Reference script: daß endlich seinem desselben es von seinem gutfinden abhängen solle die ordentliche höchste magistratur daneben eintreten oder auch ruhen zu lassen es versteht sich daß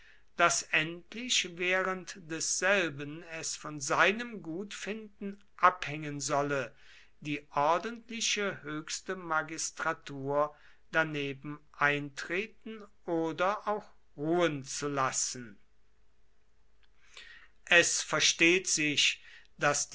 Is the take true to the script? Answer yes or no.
no